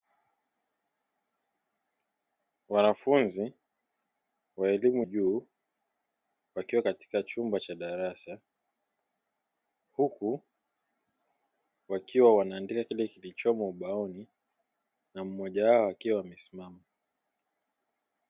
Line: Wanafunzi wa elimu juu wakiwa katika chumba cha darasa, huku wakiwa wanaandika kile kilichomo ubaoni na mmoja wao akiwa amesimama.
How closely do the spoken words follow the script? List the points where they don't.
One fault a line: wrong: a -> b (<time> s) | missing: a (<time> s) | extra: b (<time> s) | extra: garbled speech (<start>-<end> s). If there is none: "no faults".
no faults